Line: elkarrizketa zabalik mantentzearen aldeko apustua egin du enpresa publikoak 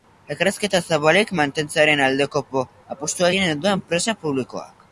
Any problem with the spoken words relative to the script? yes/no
no